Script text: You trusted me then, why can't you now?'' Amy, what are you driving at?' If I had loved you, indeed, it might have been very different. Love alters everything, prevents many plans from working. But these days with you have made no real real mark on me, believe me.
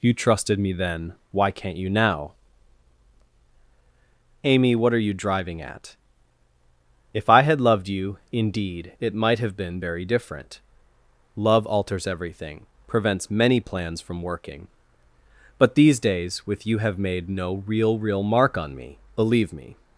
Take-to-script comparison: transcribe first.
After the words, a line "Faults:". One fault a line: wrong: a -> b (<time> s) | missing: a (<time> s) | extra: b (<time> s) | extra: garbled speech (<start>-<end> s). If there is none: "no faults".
You trusted me then, why can't you now?'' Amy, what are you driving at?' If I had loved you, indeed, it might have been very different. Love alters everything, prevents many plans from working. But these days with you have made no real real mark on me, believe me.
Faults:
no faults